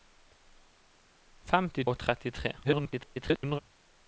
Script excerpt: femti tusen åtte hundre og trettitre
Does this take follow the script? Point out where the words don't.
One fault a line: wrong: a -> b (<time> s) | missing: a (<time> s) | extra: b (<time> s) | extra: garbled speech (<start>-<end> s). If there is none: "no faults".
missing: tusen åtte hundre (1.8 s)
extra: garbled speech (2.6-3.6 s)